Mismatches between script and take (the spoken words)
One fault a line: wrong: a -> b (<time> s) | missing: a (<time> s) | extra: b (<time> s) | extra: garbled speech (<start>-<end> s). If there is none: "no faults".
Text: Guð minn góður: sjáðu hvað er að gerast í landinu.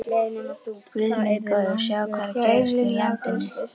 no faults